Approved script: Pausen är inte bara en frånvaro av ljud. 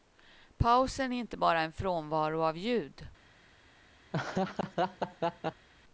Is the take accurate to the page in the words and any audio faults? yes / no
no